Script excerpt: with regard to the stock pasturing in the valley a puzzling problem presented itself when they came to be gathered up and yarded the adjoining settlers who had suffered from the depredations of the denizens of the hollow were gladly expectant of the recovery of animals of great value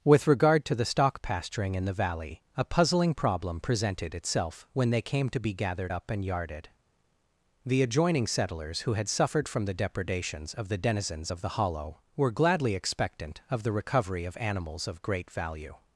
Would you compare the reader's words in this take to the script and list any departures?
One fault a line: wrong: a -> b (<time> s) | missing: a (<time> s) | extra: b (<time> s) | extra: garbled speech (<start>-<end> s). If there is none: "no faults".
no faults